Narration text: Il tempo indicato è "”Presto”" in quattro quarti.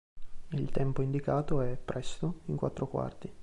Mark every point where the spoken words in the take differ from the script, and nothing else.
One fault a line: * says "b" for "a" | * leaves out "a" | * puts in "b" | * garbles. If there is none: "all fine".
all fine